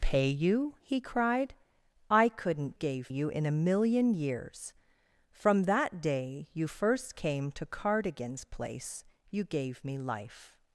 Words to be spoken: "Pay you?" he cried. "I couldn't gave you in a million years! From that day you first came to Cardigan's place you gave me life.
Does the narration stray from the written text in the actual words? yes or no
no